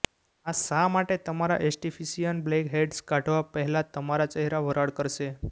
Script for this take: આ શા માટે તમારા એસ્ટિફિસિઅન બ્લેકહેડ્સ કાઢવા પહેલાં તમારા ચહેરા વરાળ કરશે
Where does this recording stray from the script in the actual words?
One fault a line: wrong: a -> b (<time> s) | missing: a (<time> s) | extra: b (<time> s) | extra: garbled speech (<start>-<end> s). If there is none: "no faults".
no faults